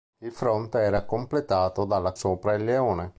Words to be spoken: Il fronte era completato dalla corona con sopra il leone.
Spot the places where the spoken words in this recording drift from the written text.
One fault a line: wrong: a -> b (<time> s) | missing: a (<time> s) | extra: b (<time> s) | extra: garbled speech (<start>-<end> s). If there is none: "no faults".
missing: corona con (2.1 s)